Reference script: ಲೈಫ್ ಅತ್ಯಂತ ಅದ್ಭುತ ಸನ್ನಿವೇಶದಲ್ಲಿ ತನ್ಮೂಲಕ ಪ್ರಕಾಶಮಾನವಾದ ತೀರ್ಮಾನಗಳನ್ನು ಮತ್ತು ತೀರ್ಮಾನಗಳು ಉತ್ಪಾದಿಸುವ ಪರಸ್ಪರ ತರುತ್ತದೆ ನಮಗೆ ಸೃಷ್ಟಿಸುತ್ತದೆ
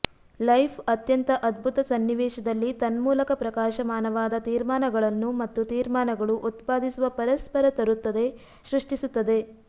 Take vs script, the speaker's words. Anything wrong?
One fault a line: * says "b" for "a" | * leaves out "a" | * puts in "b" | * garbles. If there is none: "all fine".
* leaves out "ನಮಗೆ"